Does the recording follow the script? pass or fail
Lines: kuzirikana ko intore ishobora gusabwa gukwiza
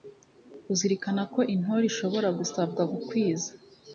pass